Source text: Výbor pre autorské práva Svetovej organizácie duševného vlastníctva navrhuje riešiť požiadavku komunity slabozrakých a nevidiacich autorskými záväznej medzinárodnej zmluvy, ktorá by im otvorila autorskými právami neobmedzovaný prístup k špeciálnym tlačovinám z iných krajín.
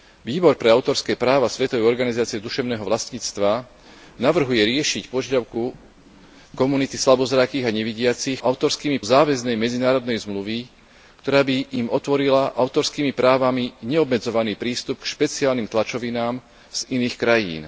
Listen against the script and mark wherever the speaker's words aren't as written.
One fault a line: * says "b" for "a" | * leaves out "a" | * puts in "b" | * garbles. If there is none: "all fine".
all fine